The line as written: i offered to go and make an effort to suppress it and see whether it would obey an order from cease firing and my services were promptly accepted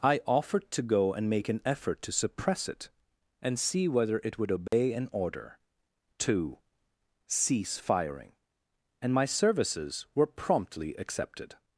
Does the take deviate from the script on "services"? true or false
false